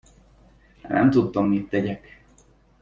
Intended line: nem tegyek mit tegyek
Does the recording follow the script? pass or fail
fail